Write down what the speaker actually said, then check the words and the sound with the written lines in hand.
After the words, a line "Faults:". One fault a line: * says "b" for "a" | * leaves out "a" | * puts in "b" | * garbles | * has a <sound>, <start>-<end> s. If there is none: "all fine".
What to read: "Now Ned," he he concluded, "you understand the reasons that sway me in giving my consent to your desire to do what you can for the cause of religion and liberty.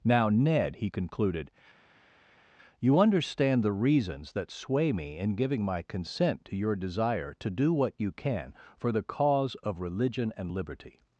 "Now Ned," he concluded, "you understand the reasons that sway me in giving my consent to your desire to do what you can for the cause of religion and liberty.
Faults:
* leaves out "he"